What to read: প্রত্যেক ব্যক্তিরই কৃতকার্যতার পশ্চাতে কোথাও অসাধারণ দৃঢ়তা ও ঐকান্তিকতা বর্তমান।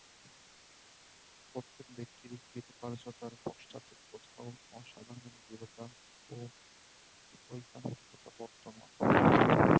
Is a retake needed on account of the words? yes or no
no